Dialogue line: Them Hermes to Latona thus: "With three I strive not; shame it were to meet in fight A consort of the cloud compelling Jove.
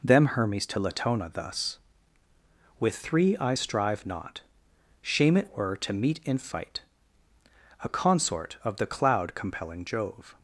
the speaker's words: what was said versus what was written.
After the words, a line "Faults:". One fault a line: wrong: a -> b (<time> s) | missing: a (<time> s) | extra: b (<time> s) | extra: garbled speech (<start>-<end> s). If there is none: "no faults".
Them Hermes to Latona thus: "With three I strive not; shame it were to meet in fight A consort of the cloud compelling Jove.
Faults:
no faults